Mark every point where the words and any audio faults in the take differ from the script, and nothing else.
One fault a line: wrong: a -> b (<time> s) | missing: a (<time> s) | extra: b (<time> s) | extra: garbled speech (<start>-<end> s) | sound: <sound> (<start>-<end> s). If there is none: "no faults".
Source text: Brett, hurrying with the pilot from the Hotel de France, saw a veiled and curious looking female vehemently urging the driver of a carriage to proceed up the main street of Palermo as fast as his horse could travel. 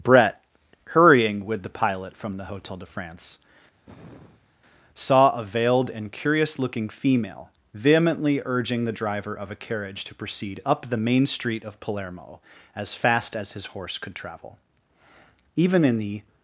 sound: sigh (3.8-4.5 s)
extra: Even in the (15.6 s)